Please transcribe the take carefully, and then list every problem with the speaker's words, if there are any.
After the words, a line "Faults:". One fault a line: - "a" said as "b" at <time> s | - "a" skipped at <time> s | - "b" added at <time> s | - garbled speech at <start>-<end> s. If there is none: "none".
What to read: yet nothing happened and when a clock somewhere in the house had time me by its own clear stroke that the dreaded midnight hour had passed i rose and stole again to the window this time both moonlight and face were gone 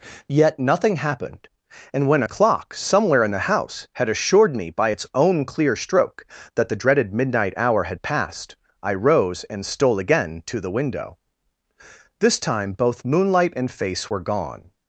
yet nothing happened and when a clock somewhere in the house had assured me by its own clear stroke that the dreaded midnight hour had passed i rose and stole again to the window this time both moonlight and face were gone
Faults:
- "time" said as "assured" at 4.1 s